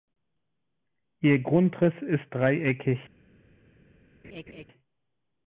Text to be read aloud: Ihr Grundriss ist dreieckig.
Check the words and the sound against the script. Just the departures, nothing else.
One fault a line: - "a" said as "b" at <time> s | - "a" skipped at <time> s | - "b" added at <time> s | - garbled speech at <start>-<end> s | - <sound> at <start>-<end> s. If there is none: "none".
- laugh at 4.2-4.6 s